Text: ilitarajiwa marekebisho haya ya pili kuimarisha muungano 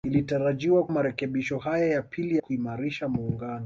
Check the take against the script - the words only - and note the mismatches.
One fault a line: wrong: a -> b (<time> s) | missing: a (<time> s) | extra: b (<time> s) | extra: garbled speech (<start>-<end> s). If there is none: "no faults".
no faults